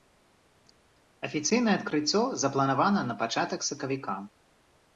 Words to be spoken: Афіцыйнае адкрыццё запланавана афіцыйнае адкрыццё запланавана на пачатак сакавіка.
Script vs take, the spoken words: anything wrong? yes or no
yes